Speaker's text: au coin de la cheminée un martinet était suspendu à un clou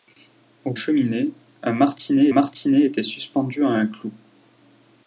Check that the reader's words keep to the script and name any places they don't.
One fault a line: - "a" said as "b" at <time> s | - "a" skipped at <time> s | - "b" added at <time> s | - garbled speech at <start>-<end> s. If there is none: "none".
- "coin de la" skipped at 0.7 s
- "martinet" added at 2.3 s